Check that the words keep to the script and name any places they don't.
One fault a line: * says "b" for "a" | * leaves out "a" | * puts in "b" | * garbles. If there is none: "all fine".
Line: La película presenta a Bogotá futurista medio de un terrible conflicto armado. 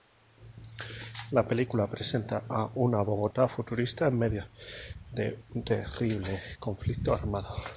* puts in "una"
* puts in "en"